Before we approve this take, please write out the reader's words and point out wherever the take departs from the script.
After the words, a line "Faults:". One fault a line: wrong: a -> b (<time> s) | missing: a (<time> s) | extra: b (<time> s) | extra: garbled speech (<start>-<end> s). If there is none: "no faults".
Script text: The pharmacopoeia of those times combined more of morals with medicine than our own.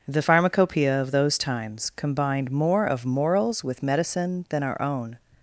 The pharmacopoeia of those times combined more of morals with medicine than our own.
Faults:
no faults